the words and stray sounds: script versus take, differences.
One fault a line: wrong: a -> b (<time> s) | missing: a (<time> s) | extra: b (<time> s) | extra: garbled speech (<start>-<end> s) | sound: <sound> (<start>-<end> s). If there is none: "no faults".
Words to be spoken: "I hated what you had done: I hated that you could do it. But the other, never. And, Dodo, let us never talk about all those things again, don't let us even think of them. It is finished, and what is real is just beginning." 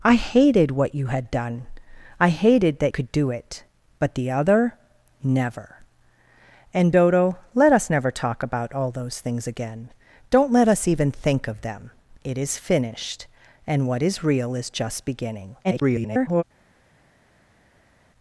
missing: you (2.9 s)
extra: garbled speech (15.6-16.4 s)